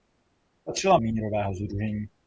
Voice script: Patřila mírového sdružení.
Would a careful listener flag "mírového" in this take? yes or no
no